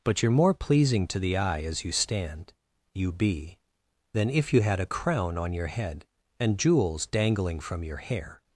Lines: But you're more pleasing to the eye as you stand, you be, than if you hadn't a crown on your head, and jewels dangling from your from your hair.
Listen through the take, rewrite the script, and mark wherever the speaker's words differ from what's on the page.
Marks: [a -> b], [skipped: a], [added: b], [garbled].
But you're more pleasing to the eye as you stand, you be, than if you [hadn't -> had] a crown on your head, and jewels dangling from your [skipped: from your] hair.